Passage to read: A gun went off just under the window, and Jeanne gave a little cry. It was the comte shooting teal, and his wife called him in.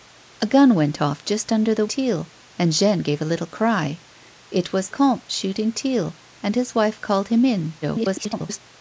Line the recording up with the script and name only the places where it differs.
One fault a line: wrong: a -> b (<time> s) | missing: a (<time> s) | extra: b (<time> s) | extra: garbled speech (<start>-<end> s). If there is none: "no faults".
wrong: window -> teal (1.9 s)
missing: the (4.9 s)
extra: garbled speech (7.8-8.6 s)